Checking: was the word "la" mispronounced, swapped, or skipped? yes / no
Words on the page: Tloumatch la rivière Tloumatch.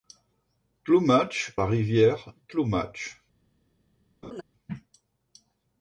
no